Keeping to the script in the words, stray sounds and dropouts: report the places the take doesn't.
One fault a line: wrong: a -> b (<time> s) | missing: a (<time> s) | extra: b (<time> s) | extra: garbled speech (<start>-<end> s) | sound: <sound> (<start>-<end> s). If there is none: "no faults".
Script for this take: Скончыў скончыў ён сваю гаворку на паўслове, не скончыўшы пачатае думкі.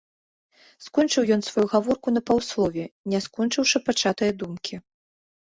missing: скончыў (1.2 s)